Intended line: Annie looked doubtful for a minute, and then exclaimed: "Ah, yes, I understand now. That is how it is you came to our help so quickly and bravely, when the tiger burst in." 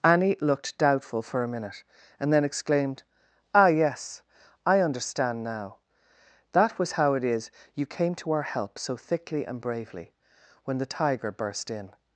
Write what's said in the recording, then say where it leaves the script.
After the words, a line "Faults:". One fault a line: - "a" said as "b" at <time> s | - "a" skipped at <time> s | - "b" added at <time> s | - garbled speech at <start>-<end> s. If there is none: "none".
Annie looked doubtful for a minute, and then exclaimed: "Ah, yes, I understand now. That was how it is you came to our help so thickly and bravely, when the tiger burst in."
Faults:
- "is" said as "was" at 6.8 s
- "quickly" said as "thickly" at 9.0 s